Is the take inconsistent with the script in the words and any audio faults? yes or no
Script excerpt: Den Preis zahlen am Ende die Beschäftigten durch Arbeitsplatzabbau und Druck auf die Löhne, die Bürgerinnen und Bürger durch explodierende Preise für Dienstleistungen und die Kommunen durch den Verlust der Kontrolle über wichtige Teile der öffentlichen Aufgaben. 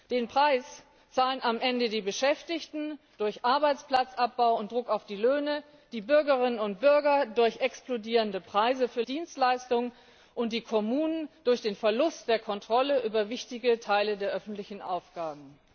no